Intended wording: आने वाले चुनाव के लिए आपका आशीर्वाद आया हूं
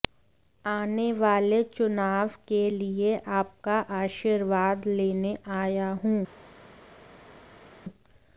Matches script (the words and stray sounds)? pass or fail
fail